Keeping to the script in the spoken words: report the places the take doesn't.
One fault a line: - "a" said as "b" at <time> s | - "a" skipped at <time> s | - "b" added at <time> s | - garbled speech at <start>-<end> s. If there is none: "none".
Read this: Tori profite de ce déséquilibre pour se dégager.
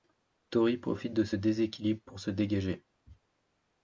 none